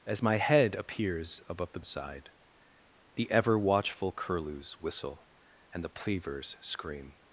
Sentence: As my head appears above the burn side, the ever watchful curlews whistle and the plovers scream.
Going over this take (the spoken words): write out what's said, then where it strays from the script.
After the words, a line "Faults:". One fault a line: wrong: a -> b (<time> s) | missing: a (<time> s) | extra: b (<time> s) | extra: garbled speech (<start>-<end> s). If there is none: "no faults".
As my head appears above the side, the ever watchful curlews whistle and the plovers scream.
Faults:
missing: burn (1.8 s)